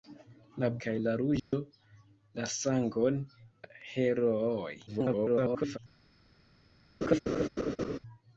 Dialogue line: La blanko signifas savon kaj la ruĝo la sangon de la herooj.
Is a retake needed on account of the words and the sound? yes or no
yes